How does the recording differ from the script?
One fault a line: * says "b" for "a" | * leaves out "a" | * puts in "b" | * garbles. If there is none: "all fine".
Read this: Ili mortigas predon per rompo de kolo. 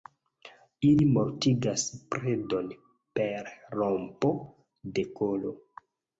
all fine